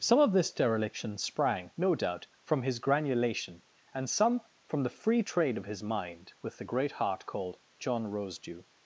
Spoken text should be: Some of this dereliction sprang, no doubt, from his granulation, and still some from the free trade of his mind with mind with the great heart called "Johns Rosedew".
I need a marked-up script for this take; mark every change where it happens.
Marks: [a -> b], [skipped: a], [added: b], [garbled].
Some of this dereliction sprang, no doubt, from his granulation, and [skipped: still] some from the free trade of his mind with [skipped: mind with] the great heart called ["Johns -> John] Rosedew".